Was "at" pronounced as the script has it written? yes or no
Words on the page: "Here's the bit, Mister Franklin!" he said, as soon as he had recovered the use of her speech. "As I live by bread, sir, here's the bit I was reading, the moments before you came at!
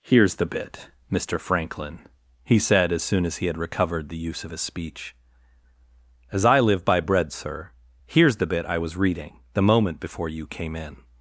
no